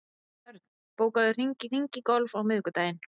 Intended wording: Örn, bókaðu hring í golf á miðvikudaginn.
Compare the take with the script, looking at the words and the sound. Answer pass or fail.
fail